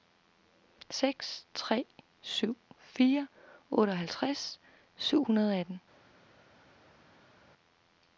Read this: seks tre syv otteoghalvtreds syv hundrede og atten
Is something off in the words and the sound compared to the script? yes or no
yes